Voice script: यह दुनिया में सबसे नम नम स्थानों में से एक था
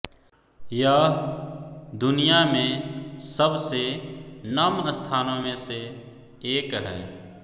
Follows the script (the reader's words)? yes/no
no